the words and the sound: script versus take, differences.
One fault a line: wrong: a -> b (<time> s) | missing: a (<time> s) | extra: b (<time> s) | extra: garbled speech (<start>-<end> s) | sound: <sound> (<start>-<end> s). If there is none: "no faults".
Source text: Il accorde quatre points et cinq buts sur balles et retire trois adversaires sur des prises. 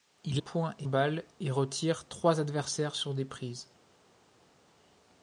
missing: accorde quatre (0.4 s)
missing: cinq buts sur (0.9 s)